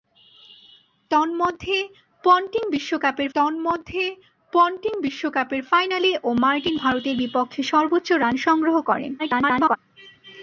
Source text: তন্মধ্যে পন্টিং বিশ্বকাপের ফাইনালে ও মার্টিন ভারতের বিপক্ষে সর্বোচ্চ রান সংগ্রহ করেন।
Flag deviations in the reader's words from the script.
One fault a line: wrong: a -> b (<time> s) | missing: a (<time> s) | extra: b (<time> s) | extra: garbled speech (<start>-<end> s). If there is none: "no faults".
extra: তন্মধ্যে পন্টিং বিশ্বকাপের (3.4 s)
extra: garbled speech (9.2-9.8 s)